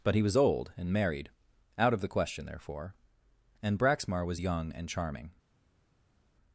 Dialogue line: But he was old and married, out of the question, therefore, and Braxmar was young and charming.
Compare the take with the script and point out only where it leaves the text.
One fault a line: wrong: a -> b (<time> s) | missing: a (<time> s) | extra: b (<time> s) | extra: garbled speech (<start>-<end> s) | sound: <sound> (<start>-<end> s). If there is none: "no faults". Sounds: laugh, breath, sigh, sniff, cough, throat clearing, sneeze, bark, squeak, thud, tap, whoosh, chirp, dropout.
no faults